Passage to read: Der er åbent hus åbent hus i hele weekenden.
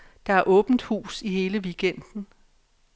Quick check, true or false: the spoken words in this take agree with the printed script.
false